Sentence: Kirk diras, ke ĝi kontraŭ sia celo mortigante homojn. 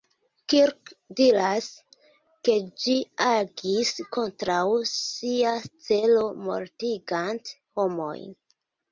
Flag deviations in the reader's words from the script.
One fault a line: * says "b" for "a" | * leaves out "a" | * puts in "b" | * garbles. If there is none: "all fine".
* puts in "agis"